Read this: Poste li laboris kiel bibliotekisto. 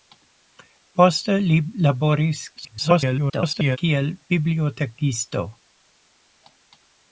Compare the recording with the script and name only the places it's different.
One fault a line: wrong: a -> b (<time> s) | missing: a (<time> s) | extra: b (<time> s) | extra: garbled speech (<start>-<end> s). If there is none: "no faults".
extra: garbled speech (2.6-3.8 s)